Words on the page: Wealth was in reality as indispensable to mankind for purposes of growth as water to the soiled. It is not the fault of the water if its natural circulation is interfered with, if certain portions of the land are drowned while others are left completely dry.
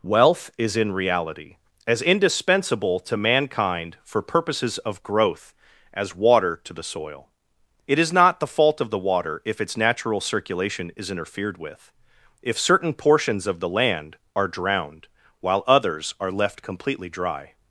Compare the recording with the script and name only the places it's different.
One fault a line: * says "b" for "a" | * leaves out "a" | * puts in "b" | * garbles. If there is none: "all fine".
* says "is" for "was"
* says "soil" for "soiled"